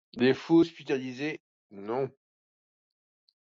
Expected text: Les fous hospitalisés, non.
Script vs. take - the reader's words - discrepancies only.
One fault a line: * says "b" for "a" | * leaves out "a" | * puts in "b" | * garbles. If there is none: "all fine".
all fine